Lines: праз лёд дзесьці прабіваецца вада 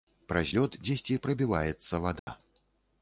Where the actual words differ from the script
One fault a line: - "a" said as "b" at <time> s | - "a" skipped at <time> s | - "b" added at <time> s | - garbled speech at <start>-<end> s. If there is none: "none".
none